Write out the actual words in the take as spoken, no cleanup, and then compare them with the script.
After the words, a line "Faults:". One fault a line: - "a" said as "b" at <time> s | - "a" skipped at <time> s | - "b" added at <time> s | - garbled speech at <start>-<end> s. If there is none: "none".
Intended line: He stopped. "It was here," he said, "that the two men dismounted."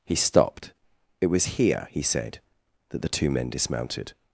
He stopped. "It was here," he said, "that the two men dismounted."
Faults:
none